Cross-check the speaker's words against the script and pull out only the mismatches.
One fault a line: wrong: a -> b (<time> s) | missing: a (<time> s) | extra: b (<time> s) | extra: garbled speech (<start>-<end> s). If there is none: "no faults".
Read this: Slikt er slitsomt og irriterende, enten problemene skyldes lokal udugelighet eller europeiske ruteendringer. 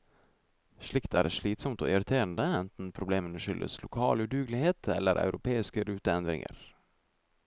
no faults